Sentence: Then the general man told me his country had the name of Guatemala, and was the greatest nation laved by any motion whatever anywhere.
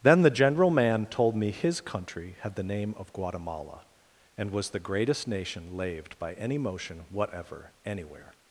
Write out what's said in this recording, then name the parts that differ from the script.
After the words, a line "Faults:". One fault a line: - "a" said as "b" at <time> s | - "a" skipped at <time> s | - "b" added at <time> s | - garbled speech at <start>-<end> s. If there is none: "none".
Then the general man told me his country had the name of Guatemala, and was the greatest nation laved by any motion whatever anywhere.
Faults:
none